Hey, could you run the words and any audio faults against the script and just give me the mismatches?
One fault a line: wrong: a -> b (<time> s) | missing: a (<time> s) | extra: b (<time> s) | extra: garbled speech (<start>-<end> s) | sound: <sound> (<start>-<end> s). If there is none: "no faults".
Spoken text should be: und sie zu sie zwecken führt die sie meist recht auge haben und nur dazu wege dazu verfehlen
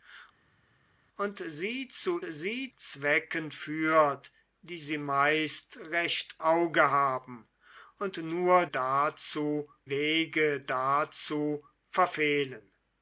no faults